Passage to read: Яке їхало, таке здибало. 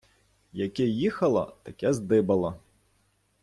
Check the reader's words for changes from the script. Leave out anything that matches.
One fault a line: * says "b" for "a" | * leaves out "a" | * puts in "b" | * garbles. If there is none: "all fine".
all fine